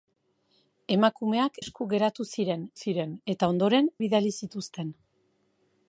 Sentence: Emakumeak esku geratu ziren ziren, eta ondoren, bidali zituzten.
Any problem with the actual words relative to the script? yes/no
no